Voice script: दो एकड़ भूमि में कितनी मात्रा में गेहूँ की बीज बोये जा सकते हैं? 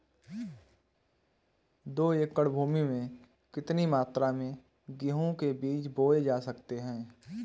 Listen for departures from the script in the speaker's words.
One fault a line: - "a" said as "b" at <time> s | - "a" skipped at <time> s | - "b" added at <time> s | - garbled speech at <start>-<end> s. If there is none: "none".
- "की" said as "के" at 5.3 s